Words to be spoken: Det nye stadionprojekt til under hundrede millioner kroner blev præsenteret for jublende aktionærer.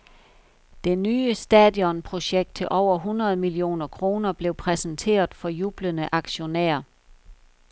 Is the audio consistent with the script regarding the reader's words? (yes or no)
no